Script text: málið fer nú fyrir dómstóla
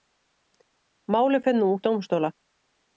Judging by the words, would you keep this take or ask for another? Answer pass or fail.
fail